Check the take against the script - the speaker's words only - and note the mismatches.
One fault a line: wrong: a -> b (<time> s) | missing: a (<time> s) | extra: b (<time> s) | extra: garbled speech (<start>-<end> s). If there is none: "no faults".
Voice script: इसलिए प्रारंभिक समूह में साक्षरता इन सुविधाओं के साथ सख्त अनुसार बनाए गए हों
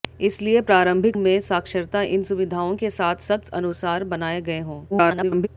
missing: समूह (1.2 s)
extra: garbled speech (4.9-5.5 s)